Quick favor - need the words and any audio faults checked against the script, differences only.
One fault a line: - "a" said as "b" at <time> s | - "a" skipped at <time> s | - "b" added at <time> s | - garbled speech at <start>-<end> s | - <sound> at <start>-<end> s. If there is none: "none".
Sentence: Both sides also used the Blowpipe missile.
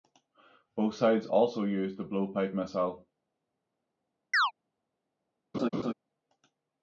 - chirp at 4.3-4.5 s
- laugh at 5.5-5.9 s